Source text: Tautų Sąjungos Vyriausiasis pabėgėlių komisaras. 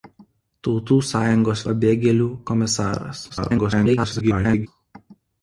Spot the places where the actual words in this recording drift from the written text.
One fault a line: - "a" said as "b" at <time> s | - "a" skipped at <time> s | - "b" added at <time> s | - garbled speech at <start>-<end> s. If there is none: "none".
- "Vyriausiasis" skipped at 1.6 s
- garbled speech at 3.3-4.7 s